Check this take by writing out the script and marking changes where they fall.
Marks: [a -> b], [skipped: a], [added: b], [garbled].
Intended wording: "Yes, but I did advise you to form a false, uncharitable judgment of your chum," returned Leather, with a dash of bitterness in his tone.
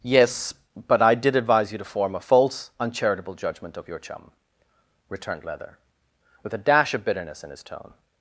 "Yes, but I did advise you to form a false, uncharitable judgment of your chum," returned Leather, with a dash of bitterness in his tone.